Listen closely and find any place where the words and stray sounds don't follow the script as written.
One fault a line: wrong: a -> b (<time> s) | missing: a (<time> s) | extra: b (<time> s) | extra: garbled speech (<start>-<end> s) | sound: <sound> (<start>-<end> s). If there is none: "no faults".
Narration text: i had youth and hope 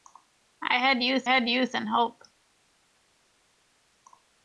extra: had youth (1.2 s)